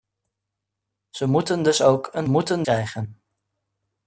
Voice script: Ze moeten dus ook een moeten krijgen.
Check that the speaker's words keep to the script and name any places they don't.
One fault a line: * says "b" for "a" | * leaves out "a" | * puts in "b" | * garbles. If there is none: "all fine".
all fine